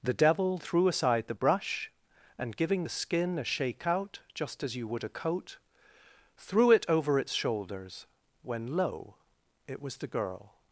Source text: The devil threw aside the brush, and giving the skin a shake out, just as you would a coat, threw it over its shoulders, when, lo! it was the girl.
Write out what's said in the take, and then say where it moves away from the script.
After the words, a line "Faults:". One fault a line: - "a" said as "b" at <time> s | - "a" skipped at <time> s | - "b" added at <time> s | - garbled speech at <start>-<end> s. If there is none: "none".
The devil threw aside the brush, and giving the skin a shake out, just as you would a coat, threw it over its shoulders, when, lo! it was the girl.
Faults:
none